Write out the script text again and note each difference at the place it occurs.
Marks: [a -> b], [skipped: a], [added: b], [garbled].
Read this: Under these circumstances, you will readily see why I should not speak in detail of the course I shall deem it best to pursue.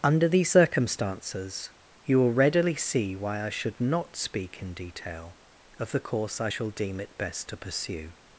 Under these circumstances, you will readily see why I should not speak in detail of the course I shall deem it best to pursue.